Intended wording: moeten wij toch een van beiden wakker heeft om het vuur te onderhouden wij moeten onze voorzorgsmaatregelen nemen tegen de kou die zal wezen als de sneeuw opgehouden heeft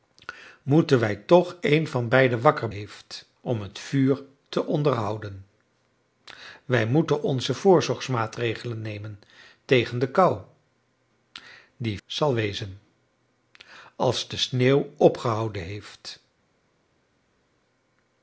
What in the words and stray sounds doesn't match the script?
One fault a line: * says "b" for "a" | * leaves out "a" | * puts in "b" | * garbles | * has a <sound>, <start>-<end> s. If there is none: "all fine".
all fine